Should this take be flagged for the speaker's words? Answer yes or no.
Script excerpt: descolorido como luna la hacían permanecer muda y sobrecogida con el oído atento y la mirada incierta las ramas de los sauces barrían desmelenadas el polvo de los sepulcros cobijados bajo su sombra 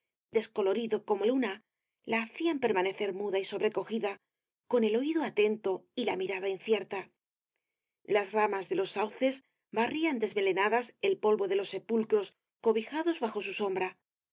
no